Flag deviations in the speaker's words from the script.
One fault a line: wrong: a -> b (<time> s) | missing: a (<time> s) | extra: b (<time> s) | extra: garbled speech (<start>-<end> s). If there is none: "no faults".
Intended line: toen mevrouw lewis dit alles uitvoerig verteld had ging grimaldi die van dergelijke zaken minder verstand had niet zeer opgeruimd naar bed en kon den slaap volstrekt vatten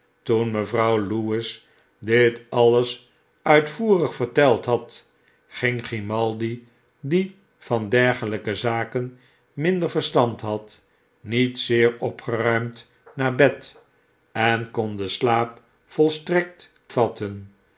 no faults